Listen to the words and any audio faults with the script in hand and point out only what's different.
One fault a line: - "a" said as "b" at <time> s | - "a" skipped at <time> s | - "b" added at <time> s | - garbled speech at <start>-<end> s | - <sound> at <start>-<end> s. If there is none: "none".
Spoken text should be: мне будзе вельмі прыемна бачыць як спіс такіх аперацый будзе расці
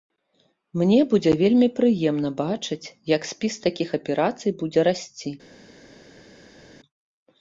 none